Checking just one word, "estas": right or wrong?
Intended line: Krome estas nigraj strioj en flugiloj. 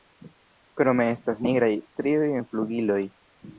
right